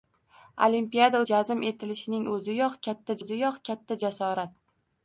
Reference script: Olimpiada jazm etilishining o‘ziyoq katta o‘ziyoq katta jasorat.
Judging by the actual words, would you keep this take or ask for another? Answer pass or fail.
pass